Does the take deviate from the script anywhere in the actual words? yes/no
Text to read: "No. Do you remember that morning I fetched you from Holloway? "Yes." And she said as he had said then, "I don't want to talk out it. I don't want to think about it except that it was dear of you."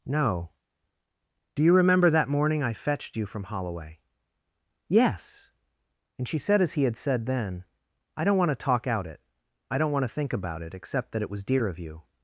no